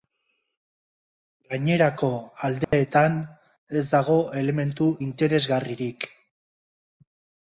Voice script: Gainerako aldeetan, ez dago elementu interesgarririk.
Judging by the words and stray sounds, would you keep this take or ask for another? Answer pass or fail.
fail